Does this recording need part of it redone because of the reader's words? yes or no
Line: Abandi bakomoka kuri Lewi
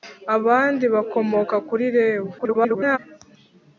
yes